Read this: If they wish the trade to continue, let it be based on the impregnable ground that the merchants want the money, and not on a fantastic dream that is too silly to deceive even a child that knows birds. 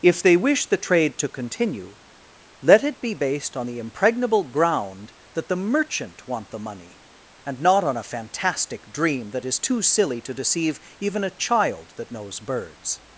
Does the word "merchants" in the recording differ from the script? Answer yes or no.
yes